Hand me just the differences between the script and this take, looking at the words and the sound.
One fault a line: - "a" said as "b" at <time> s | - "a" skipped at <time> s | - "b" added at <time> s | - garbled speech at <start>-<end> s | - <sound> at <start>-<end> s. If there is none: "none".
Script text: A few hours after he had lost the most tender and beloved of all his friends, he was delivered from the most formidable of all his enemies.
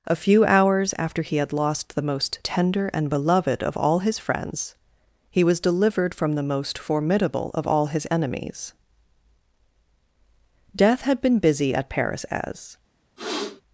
- "Death had been busy at Paris as" added at 10.8 s
- sniff at 13.2-13.6 s